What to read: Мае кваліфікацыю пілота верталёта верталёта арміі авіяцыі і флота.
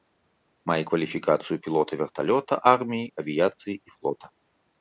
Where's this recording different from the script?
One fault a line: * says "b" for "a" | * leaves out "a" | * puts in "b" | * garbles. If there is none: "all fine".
* leaves out "верталёта"